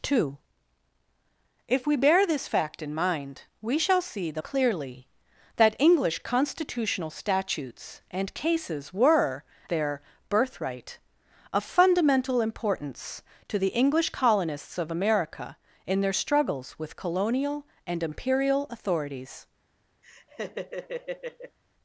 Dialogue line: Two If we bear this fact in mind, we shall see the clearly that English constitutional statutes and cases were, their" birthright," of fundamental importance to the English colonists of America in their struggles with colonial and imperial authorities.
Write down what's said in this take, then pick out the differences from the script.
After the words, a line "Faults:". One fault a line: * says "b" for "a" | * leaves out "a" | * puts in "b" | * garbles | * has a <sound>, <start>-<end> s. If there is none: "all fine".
Two If we bear this fact in mind, we shall see the clearly that English constitutional statutes and cases were, their" birthright," of fundamental importance to the English colonists of America in their struggles with colonial and imperial authorities.
Faults:
* has a laugh, 20.0-21.6 s